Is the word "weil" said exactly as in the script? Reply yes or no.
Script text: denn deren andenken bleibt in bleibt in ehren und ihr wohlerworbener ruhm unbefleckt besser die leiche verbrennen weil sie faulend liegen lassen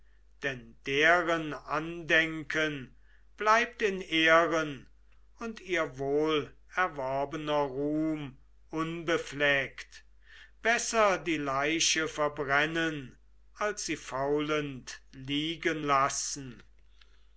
no